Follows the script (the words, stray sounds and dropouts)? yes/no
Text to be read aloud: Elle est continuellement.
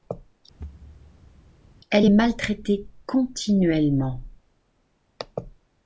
no